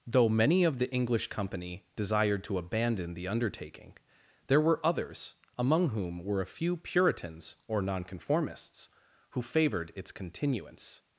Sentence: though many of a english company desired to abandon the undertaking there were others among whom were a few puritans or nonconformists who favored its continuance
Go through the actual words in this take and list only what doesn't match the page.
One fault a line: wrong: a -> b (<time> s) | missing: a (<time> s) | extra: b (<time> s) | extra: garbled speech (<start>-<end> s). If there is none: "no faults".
wrong: a -> the (0.8 s)